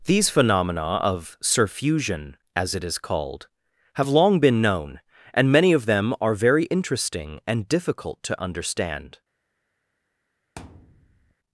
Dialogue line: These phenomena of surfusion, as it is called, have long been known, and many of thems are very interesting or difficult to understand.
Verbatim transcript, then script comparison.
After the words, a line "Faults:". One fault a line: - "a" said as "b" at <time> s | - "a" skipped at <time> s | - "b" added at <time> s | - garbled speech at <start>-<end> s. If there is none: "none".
These phenomena of surfusion, as it is called, have long been known, and many of them are very interesting and difficult to understand.
Faults:
- "thems" said as "them" at 5.8 s
- "or" said as "and" at 7.5 s